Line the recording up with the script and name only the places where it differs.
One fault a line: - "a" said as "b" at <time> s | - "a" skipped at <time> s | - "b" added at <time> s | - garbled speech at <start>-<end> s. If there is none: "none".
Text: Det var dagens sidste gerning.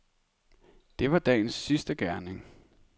none